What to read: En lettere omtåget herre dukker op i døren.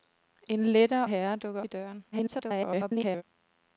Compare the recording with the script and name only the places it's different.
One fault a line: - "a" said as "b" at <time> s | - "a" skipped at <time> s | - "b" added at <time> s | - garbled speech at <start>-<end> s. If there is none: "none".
- "omtåget" skipped at 1.1 s
- "op" skipped at 1.6 s
- garbled speech at 2.1-3.2 s